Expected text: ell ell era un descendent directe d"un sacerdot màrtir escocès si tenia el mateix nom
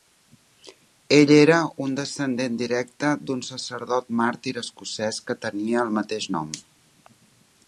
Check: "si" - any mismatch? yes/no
yes